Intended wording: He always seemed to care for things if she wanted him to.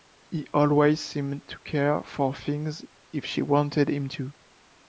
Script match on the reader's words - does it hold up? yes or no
yes